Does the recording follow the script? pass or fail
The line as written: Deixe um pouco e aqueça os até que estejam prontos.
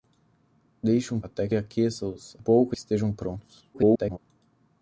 fail